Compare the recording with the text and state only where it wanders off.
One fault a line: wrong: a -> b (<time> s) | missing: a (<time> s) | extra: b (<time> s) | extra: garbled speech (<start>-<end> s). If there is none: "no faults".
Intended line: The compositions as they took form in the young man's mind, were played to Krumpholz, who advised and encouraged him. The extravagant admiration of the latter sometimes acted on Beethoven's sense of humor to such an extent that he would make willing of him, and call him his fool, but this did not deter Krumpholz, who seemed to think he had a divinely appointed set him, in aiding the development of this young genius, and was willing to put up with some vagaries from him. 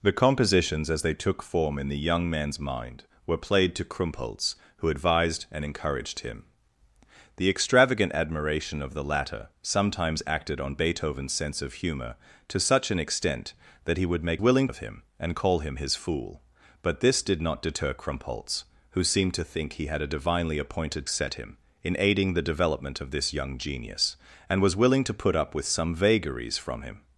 no faults